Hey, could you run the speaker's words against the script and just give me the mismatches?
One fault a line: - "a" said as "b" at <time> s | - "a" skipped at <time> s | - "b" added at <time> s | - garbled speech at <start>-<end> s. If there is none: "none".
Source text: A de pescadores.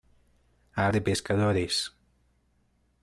none